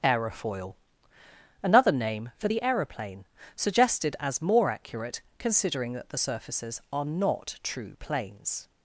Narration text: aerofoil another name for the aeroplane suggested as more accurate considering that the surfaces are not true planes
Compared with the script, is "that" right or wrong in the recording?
right